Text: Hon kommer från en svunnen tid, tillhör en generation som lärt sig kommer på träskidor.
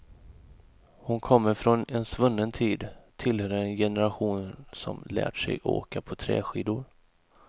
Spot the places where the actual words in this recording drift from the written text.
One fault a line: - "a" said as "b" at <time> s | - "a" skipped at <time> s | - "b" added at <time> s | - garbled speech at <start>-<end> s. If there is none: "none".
- "kommer" said as "åka" at 5.6 s